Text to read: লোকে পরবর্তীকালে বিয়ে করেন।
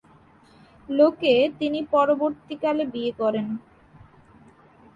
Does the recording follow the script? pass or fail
fail